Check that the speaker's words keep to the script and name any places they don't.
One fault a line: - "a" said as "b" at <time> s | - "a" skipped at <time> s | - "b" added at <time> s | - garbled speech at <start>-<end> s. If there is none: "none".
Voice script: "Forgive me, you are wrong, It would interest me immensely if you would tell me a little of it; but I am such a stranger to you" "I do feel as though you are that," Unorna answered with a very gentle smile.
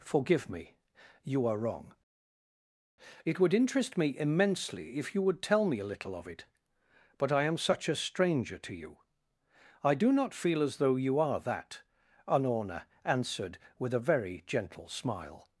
- "not" added at 10.1 s